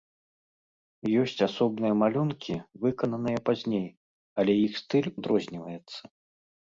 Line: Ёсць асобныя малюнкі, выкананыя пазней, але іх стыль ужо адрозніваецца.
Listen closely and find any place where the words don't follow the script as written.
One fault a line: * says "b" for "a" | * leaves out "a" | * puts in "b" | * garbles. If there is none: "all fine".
* leaves out "ужо"